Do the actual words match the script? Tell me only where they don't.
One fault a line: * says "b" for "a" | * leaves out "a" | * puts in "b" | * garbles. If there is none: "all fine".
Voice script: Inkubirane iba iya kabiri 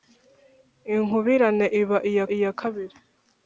* puts in "iya"